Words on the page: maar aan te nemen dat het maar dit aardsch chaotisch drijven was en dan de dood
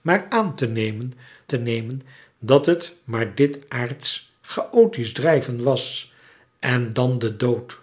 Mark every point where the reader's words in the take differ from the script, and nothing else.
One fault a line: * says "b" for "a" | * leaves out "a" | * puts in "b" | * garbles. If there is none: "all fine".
* puts in "te nemen"